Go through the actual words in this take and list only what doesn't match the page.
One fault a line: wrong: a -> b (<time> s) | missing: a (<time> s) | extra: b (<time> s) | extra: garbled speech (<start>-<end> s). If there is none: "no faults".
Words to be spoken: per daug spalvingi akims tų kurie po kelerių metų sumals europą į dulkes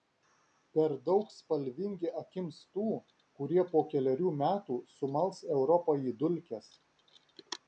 no faults